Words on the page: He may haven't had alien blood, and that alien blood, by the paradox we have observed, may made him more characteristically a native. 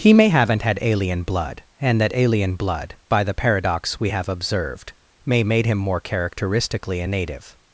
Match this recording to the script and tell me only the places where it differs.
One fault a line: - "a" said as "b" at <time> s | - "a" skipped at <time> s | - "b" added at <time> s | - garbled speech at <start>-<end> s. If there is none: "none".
none